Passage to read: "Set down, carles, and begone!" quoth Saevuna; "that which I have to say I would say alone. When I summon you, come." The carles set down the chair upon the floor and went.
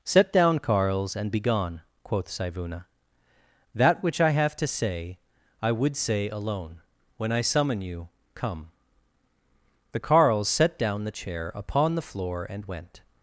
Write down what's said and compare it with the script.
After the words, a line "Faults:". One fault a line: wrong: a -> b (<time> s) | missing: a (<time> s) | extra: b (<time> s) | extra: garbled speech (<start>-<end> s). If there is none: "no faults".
"Set down, carles, and begone!" quoth Saevuna; "that which I have to say I would say alone. When I summon you, come." The carles set down the chair upon the floor and went.
Faults:
no faults